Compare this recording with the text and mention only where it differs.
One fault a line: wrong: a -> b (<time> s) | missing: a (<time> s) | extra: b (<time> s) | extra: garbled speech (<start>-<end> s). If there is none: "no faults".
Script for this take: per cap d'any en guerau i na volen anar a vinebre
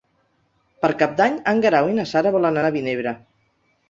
extra: sara (2.1 s)